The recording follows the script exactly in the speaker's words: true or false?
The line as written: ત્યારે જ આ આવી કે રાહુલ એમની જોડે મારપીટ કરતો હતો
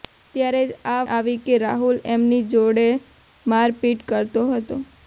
true